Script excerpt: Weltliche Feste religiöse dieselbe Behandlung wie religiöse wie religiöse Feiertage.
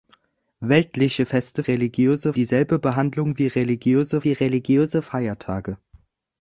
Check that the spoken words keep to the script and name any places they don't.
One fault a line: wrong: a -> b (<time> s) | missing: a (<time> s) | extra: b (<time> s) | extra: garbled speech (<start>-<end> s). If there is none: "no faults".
no faults